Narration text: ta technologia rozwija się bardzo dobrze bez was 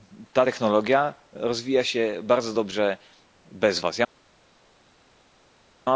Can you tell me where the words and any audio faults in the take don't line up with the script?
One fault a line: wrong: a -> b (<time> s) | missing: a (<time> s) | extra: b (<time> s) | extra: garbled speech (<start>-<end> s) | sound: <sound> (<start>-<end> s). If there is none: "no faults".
no faults